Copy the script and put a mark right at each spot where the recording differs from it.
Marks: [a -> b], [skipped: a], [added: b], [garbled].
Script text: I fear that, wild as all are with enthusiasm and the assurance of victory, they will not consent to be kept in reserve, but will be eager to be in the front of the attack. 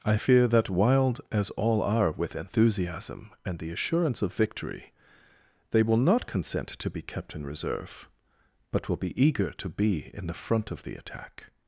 I fear that, wild as all are with enthusiasm and the assurance of victory, they will not consent to be kept in reserve, but will be eager to be in the front of the attack.